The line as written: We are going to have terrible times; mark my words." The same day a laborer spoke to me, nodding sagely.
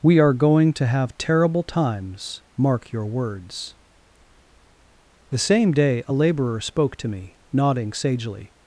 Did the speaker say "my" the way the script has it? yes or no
no